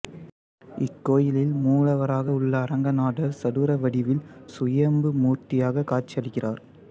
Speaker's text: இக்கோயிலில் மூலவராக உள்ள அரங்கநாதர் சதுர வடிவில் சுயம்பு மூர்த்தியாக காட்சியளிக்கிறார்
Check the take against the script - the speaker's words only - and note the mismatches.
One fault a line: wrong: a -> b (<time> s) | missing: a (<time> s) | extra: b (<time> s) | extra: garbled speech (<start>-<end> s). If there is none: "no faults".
no faults